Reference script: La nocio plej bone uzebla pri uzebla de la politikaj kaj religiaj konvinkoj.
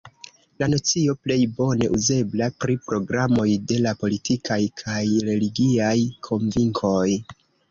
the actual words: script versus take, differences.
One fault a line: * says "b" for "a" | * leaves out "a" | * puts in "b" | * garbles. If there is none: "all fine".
* says "programoj" for "uzebla"